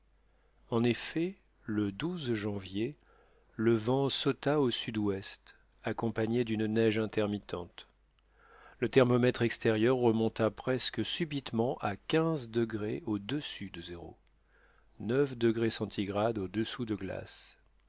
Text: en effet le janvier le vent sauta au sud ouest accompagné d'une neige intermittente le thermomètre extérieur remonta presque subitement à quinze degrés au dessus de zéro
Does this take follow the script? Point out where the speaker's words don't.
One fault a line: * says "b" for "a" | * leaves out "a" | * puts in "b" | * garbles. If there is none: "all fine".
all fine